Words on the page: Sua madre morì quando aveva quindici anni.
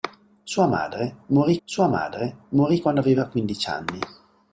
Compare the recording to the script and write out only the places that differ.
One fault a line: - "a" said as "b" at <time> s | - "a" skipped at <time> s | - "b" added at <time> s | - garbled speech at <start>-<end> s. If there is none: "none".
- "sua madre morì" added at 1.6 s